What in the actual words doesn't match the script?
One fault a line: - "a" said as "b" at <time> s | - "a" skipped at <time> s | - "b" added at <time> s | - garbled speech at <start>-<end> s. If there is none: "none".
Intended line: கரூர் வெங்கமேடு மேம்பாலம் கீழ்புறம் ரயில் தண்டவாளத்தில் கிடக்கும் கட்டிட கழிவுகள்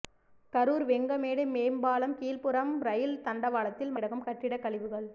none